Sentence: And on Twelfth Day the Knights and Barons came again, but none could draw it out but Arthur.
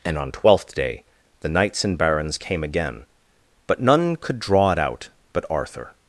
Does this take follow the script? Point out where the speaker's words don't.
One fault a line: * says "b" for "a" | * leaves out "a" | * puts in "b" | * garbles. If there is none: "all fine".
all fine